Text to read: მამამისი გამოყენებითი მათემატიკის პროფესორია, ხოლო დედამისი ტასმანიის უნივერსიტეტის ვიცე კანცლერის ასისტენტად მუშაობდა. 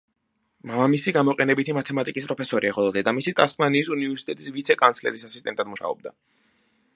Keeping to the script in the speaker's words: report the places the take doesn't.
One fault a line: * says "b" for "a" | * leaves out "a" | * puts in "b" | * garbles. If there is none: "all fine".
all fine